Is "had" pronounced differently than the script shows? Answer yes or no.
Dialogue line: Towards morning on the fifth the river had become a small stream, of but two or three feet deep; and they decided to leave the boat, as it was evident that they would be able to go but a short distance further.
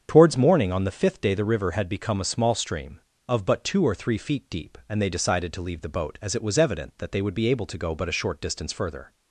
no